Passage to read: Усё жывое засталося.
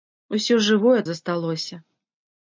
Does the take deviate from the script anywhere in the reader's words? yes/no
no